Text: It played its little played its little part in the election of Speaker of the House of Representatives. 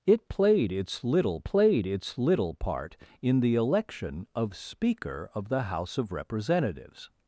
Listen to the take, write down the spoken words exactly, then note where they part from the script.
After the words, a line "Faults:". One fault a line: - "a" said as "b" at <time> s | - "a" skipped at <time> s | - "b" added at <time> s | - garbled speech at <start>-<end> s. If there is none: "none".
It played its little played its little part in the election of Speaker of the House of Representatives.
Faults:
none